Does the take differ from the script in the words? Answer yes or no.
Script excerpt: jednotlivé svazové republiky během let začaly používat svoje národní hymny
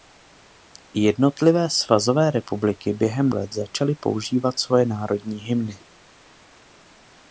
no